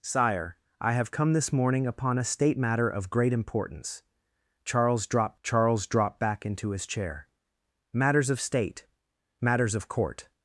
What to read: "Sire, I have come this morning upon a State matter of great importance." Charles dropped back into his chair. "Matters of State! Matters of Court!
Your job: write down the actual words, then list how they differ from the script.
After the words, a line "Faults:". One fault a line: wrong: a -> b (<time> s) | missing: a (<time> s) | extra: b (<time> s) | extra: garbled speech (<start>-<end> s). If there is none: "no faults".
"Sire, I have come this morning upon a State matter of great importance." Charles dropped charles dropped back into his chair. "Matters of State! Matters of Court!
Faults:
extra: charles dropped (5.4 s)